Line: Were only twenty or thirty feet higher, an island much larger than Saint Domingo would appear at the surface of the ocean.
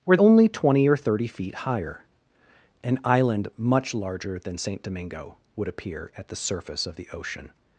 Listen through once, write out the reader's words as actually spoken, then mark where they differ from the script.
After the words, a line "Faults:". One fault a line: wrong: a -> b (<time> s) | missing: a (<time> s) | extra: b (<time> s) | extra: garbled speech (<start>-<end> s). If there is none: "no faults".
Were only twenty or thirty feet higher, an island much larger than Saint Domingo would appear at the surface of the ocean.
Faults:
no faults